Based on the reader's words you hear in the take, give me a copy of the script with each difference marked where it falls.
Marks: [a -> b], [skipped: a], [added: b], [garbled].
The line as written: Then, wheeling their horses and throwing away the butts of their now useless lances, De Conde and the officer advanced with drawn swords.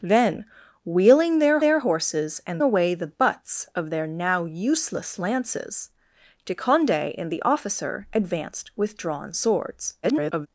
Then, wheeling their [added: their] horses and [skipped: throwing] away the butts of their now useless lances, De Conde and the officer advanced with drawn swords. [garbled]